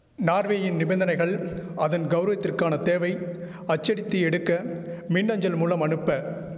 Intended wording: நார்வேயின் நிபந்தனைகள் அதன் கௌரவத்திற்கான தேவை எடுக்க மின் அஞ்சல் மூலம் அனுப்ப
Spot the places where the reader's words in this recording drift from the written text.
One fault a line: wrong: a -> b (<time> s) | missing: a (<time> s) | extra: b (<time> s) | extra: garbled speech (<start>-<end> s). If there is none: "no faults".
extra: அச்சடித்து (3.6 s)